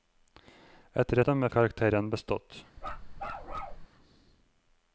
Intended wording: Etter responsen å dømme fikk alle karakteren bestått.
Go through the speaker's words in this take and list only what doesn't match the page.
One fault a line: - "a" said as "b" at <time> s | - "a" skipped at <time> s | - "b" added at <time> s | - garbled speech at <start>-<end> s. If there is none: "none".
- "responsen" skipped at 1.2 s
- "fikk alle" skipped at 1.5 s